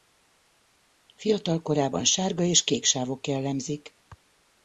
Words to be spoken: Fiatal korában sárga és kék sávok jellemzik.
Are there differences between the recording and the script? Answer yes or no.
no